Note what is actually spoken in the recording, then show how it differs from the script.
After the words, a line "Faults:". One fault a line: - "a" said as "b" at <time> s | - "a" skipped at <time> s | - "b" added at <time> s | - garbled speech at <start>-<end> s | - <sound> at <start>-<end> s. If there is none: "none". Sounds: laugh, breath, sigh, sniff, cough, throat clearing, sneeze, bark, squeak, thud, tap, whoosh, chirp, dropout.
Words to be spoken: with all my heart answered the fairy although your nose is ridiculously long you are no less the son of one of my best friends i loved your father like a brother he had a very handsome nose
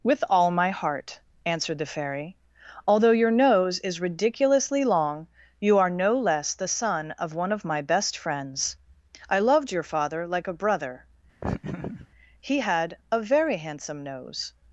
with all my heart answered the fairy although your nose is ridiculously long you are no less the son of one of my best friends i loved your father like a brother he had a very handsome nose
Faults:
- laugh at 11.4-12.1 s